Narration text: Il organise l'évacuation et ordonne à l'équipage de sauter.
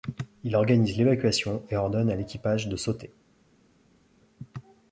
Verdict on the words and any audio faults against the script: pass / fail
pass